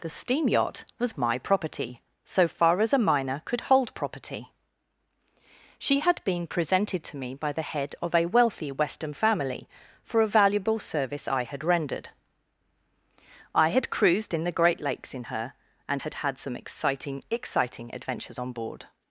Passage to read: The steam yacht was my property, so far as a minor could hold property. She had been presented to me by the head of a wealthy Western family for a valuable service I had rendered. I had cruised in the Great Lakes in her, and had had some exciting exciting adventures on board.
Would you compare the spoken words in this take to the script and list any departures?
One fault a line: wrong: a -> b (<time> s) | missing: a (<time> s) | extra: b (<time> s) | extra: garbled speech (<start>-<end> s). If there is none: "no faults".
no faults